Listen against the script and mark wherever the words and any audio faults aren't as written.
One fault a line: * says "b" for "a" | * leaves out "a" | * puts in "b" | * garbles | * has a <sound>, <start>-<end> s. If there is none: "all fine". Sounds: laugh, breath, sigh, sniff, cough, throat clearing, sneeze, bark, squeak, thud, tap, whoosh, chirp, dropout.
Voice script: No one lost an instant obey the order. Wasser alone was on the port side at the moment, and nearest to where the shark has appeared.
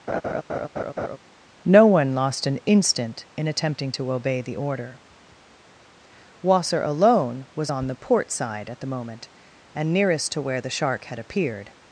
* has a laugh, 0.1-1.2 s
* puts in "in attempting to"
* says "had" for "has"